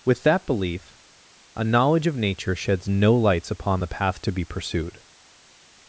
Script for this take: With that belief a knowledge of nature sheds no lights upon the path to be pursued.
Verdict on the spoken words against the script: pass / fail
pass